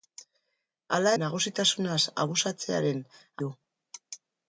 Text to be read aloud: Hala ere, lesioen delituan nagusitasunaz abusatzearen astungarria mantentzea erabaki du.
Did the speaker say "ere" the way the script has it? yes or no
no